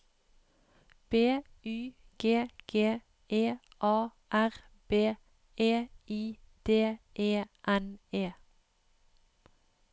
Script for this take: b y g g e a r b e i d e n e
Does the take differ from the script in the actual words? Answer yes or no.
no